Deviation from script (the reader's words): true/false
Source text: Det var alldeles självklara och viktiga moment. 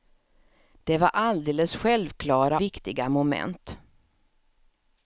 true